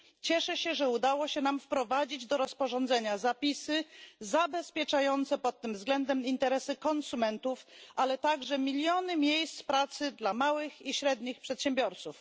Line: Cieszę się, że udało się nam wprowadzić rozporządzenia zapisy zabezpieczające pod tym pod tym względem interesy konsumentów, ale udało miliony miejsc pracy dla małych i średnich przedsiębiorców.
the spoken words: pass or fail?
fail